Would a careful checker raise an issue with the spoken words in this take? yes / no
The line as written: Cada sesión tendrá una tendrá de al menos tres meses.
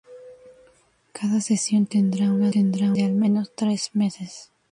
no